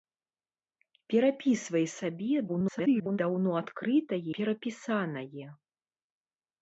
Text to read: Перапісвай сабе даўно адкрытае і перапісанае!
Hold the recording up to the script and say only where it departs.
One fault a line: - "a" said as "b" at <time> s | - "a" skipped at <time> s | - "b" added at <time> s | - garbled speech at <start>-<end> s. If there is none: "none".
- garbled speech at 2.5-3.2 s
- "і" skipped at 4.2 s